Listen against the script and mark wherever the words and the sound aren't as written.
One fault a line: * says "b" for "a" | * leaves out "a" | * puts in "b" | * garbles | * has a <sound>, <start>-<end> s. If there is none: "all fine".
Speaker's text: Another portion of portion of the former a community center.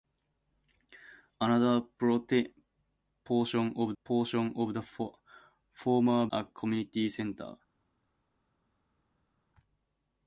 all fine